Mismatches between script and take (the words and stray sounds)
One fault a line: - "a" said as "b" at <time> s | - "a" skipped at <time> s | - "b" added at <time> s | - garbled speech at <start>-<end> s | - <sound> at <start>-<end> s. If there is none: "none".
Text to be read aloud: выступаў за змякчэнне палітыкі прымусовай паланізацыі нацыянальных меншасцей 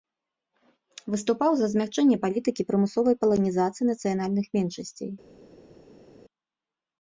none